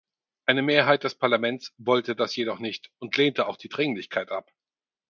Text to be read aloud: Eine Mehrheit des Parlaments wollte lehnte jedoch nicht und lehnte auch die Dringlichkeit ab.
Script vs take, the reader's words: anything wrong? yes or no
yes